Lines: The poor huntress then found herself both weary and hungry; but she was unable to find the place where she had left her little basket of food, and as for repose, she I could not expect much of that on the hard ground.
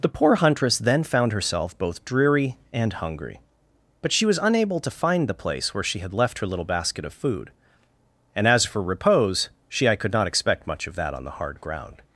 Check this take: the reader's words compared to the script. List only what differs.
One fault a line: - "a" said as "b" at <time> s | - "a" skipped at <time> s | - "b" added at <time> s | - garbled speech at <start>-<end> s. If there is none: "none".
- "weary" said as "dreary" at 2.0 s